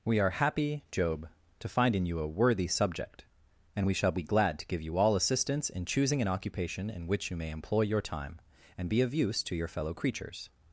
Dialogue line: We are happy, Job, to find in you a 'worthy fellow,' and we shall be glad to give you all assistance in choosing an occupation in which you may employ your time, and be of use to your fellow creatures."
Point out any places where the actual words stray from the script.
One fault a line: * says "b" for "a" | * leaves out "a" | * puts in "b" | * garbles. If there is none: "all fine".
* says "subject" for "fellow"